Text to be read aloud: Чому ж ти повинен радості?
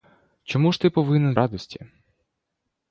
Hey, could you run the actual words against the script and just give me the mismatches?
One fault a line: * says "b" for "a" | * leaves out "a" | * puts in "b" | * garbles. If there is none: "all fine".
all fine